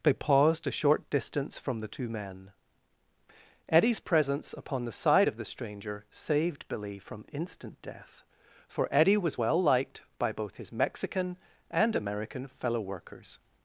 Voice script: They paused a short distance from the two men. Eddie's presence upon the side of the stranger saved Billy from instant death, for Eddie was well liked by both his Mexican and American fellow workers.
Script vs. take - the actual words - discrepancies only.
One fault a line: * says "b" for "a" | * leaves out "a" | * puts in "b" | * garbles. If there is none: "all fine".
all fine